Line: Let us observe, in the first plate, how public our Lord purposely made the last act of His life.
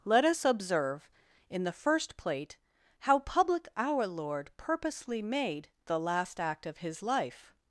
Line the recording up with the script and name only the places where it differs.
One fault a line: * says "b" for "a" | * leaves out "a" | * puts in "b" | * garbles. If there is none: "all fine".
all fine